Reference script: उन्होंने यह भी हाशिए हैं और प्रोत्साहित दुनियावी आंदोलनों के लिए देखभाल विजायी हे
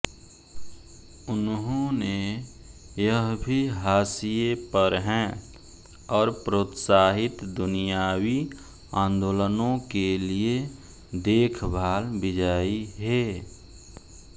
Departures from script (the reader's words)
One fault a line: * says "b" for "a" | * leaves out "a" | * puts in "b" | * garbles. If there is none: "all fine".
* puts in "पर"